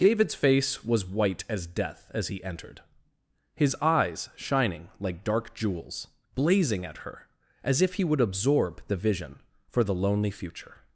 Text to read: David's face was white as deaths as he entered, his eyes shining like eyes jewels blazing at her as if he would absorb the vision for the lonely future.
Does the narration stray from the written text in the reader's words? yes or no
yes